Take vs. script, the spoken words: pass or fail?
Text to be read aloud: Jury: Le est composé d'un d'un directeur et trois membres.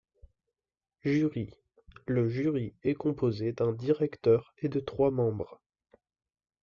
fail